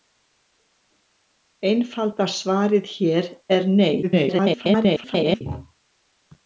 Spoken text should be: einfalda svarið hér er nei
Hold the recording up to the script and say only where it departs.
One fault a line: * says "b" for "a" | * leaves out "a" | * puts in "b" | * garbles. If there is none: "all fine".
* garbles